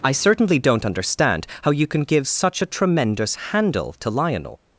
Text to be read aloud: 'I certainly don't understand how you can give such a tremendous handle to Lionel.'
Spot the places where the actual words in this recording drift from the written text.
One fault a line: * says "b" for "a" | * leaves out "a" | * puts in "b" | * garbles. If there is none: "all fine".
all fine